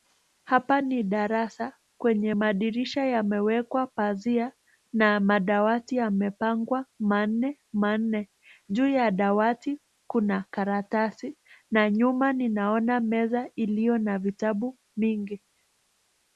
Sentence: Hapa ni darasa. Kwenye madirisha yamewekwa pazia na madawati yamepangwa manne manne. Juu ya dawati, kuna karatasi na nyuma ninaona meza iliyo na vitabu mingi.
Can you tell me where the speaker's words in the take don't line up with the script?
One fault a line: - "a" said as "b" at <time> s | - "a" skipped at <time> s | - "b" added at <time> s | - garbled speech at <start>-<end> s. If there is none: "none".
none